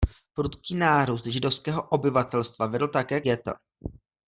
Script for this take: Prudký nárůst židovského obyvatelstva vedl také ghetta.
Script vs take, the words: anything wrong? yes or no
no